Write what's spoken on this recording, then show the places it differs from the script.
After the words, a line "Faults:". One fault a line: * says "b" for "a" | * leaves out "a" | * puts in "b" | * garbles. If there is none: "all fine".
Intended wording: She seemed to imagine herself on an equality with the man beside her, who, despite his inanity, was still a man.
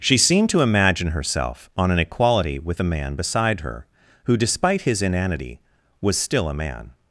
She seemed to imagine herself on an equality with the man beside her, who, despite his inanity, was still a man.
Faults:
all fine